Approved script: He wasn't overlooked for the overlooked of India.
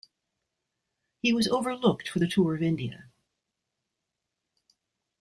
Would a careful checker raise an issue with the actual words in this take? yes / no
yes